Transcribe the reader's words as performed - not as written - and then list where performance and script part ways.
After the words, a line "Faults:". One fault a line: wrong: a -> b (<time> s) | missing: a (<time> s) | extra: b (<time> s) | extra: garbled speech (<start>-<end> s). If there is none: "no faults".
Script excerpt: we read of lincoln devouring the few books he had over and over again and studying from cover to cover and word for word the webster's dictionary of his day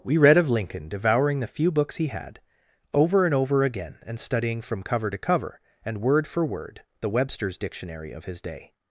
we read of lincoln devouring the few books he had over and over again and studying from cover to cover and word for word the webster's dictionary of his day
Faults:
no faults